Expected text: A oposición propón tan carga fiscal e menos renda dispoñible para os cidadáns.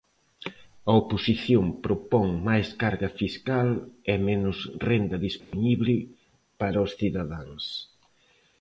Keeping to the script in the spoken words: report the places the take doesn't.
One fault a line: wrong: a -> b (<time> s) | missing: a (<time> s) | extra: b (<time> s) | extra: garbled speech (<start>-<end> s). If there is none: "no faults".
wrong: tan -> máis (2.5 s)